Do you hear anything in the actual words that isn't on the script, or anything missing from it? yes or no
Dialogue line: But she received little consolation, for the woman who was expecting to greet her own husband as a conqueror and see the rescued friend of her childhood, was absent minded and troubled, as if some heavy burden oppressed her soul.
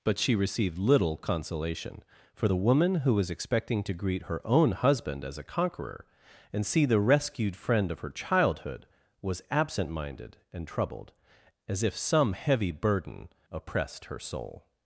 no